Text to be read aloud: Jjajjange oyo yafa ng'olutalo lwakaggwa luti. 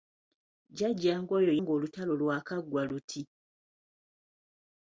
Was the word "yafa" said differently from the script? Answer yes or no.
yes